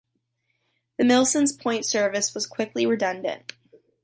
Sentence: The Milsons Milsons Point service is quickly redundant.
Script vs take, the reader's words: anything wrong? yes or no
yes